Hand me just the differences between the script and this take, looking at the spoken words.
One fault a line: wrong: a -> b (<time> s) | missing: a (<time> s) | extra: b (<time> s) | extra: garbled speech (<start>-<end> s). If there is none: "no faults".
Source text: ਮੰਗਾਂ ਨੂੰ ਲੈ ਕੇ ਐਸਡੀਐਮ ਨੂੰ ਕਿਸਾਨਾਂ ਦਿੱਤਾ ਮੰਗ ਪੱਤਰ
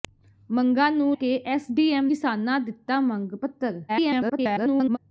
missing: ਲੈ (1.2 s)
missing: ਨੂੰ (2.1 s)
extra: garbled speech (3.9-5.0 s)